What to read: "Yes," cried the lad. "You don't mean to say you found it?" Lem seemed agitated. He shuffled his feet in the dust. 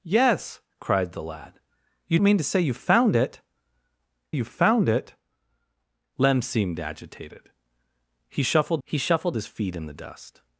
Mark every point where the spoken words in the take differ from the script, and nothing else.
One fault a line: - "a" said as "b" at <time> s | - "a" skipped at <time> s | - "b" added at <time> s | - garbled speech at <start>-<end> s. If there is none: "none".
- "don't" skipped at 2.2 s
- "you found it" added at 4.3 s
- "he shuffled" added at 8.8 s